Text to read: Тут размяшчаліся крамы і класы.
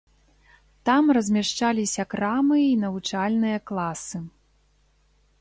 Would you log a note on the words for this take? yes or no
yes